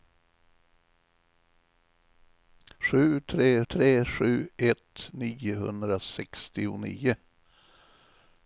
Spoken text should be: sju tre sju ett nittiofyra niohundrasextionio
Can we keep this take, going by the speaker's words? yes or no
no